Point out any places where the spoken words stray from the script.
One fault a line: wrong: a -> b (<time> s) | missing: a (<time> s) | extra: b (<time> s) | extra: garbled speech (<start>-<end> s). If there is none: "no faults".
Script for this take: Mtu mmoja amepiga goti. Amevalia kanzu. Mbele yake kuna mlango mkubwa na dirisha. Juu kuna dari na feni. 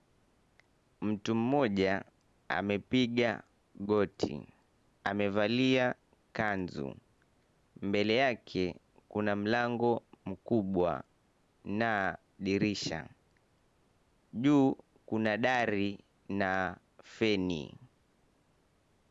no faults